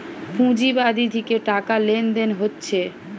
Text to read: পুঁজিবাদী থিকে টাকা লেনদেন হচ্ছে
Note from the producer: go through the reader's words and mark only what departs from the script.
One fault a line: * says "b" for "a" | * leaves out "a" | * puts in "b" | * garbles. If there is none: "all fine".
all fine